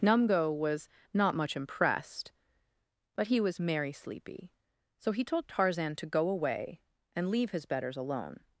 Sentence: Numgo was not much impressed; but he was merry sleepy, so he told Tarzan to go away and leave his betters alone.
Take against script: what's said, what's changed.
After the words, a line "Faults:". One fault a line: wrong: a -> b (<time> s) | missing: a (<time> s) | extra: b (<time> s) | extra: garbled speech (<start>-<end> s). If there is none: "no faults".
Numgo was not much impressed; but he was merry sleepy, so he told Tarzan to go away and leave his betters alone.
Faults:
no faults